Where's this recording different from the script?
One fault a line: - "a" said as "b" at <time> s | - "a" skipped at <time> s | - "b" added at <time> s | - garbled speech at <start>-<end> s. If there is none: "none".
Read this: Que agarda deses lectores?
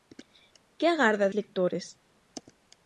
- "deses" skipped at 1.3 s